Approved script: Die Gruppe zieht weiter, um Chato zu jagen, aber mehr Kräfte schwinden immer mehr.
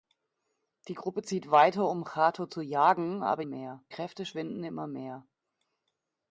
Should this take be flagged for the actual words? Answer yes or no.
no